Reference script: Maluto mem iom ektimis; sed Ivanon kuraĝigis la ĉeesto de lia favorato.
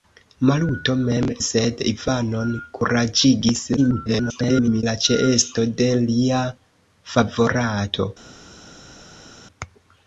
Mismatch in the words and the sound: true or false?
true